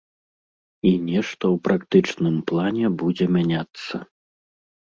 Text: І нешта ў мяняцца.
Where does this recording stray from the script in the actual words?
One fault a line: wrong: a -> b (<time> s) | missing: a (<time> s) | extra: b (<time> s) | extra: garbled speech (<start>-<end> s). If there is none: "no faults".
extra: практычным плане будзе (1.7 s)